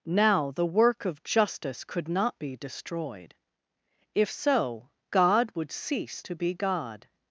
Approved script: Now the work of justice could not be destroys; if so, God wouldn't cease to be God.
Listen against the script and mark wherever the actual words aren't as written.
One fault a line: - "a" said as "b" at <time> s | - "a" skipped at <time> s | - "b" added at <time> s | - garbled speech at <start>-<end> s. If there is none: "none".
- "destroys" said as "destroyed" at 2.5 s
- "wouldn't" said as "would" at 5.5 s